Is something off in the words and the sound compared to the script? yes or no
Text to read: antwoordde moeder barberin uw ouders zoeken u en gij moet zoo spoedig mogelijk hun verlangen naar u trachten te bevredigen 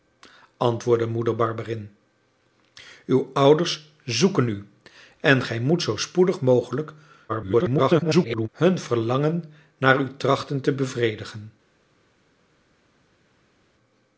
yes